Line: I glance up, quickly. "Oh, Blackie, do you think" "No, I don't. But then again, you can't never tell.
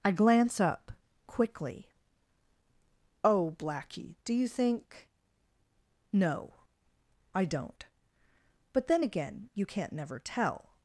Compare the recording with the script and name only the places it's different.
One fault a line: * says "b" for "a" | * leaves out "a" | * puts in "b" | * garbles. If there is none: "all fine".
all fine